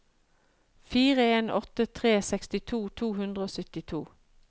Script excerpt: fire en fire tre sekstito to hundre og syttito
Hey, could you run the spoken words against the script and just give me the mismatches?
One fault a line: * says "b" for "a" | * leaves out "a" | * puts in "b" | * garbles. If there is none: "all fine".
* says "åtte" for "fire"